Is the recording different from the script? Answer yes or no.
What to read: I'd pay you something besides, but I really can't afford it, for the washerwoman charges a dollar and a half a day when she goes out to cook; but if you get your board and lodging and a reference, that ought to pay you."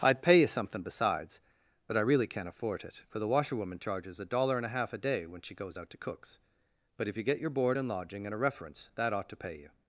yes